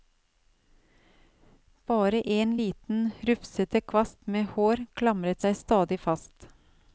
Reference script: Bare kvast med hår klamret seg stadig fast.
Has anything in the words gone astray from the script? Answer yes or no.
yes